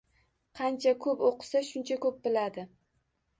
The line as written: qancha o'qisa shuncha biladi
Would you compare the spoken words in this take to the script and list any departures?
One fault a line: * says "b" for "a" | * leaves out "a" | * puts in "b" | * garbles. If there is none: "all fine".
* puts in "ko'p"
* puts in "ko'p"